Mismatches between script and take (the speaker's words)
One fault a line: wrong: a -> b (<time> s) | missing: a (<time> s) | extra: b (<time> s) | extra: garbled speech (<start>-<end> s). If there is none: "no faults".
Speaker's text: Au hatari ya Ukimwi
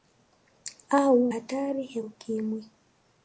no faults